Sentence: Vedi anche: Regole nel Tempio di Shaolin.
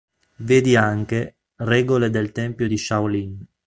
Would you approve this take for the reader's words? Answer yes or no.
no